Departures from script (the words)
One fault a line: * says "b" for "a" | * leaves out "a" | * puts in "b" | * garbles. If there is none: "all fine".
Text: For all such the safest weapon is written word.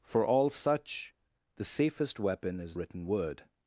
all fine